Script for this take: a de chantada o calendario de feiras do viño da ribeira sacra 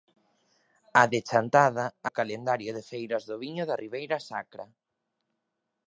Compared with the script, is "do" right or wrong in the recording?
right